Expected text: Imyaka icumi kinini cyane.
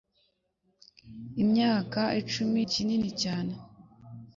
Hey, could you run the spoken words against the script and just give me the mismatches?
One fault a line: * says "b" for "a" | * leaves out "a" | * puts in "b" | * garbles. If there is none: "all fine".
all fine